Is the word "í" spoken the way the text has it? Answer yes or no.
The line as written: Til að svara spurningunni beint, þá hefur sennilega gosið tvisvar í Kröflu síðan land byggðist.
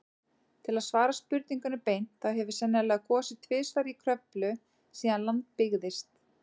yes